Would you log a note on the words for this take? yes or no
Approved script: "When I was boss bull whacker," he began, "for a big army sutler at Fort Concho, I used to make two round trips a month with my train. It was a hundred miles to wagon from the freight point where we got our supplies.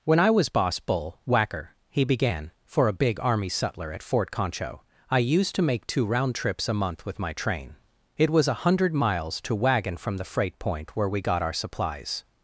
no